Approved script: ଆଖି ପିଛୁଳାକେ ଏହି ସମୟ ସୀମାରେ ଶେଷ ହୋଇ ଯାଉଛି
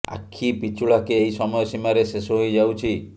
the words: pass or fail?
pass